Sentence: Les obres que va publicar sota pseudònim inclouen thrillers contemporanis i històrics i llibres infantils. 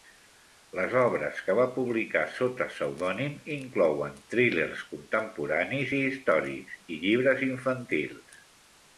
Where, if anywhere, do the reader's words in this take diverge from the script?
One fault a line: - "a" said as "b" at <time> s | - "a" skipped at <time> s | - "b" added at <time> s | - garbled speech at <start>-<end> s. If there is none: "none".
none